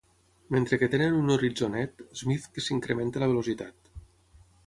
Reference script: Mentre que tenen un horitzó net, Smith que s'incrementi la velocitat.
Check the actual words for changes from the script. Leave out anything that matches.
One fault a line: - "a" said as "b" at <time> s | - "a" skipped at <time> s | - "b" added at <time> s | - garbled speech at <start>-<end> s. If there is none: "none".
none